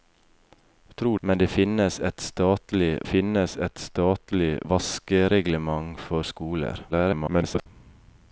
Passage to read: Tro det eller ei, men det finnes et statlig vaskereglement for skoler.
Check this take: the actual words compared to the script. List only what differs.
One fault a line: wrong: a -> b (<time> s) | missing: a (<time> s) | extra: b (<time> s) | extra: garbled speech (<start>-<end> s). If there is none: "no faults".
extra: men (1.2 s)
wrong: eller ei men det -> finnes et statlig (1.5 s)
extra: garbled speech (6.9-7.7 s)